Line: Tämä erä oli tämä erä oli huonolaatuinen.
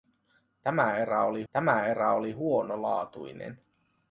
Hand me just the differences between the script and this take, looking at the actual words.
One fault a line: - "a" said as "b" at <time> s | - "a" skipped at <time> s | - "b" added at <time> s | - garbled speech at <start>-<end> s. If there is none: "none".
none